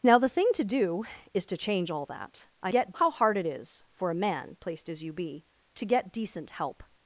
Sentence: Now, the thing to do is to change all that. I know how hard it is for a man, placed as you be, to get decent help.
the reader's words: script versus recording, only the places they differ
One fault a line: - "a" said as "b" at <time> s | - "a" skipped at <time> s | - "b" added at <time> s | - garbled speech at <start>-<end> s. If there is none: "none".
- "know" said as "get" at 2.7 s